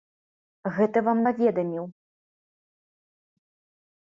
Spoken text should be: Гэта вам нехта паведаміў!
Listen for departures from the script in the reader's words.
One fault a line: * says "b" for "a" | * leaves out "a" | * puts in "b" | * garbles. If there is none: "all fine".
* leaves out "нехта"